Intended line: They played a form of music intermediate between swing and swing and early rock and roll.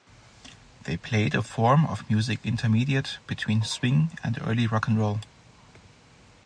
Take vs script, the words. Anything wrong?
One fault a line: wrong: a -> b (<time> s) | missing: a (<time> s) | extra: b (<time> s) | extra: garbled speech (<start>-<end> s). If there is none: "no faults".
missing: swing and (4.4 s)